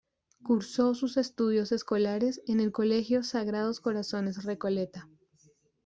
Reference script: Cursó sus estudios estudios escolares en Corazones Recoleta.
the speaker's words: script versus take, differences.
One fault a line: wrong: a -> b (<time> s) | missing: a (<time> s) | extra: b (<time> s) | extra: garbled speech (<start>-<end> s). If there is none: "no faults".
missing: estudios (1.7 s)
extra: el Colegio Sagrados (2.6 s)